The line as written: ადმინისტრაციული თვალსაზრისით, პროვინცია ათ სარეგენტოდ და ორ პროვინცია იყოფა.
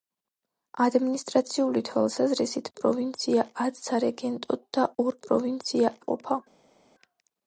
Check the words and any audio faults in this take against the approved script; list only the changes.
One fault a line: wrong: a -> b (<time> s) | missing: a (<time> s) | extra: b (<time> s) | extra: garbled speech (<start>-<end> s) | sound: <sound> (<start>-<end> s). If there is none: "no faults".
no faults